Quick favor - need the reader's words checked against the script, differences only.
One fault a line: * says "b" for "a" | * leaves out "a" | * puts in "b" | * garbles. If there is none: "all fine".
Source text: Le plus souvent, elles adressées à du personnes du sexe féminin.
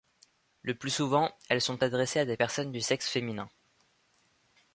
* puts in "sont"
* says "des" for "du"